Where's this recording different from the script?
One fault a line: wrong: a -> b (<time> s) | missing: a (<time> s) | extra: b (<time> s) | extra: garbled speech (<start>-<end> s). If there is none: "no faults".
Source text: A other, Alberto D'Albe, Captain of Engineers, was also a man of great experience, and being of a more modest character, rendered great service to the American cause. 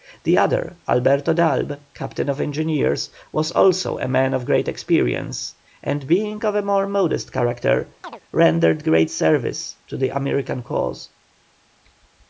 wrong: A -> The (0.2 s)